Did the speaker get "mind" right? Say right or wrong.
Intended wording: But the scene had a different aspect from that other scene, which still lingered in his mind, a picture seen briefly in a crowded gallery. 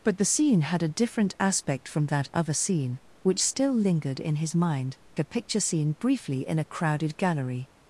right